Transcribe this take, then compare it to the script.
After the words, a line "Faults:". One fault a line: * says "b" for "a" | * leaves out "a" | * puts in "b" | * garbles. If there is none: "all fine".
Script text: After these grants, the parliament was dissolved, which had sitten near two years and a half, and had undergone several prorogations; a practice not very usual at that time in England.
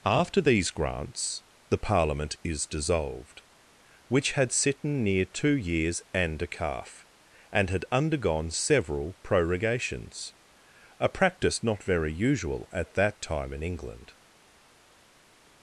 After these grants, the parliament is dissolved, which had sitten near two years and a calf, and had undergone several prorogations; a practice not very usual at that time in England.
Faults:
* says "is" for "was"
* says "calf" for "half"